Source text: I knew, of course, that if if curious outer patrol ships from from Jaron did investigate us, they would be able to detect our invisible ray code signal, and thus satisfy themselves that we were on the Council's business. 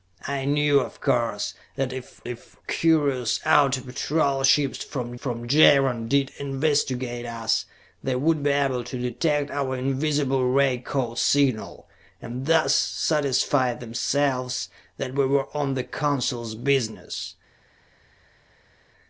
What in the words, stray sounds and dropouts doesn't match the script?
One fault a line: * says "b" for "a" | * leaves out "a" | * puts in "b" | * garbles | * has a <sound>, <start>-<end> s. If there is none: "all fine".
all fine